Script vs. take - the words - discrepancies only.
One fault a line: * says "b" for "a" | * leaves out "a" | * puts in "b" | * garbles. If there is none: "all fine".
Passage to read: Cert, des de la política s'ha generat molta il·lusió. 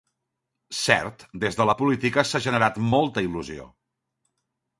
all fine